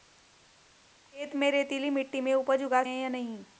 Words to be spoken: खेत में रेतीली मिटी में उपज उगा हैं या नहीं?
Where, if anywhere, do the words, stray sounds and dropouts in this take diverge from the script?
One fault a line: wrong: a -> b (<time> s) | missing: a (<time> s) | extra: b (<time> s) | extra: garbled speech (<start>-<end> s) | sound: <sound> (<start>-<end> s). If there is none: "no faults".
no faults